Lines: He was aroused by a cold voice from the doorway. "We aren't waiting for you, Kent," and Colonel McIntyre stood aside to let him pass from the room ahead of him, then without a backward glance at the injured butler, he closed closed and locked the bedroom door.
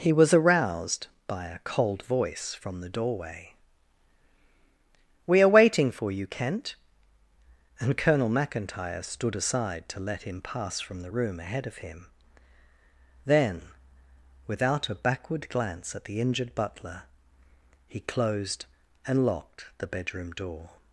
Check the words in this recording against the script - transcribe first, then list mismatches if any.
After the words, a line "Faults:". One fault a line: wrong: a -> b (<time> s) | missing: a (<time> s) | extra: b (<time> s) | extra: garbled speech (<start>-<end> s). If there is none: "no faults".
He was aroused by a cold voice from the doorway. "We are waiting for you, Kent," and Colonel McIntyre stood aside to let him pass from the room ahead of him, then without a backward glance at the injured butler, he closed and locked the bedroom door.
Faults:
wrong: aren't -> are (5.4 s)
missing: closed (18.7 s)